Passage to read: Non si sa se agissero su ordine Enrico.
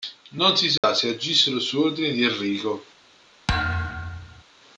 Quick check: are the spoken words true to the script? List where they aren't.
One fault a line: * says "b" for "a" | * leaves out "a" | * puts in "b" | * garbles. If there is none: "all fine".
* puts in "di"